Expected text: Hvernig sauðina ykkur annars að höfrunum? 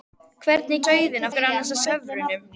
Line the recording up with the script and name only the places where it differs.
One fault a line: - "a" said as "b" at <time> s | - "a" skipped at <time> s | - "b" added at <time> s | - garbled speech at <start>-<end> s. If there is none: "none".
none